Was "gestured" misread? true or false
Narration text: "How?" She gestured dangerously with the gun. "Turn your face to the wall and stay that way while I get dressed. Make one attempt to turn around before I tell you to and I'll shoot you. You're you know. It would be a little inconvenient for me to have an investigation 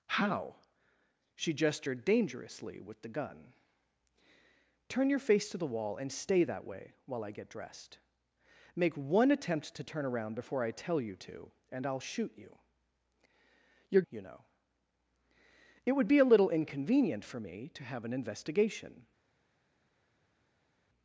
false